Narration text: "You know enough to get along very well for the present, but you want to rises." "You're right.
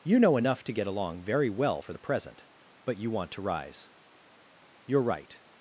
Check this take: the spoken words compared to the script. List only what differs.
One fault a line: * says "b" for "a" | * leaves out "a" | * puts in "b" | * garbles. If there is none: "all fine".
* says "rise" for "rises"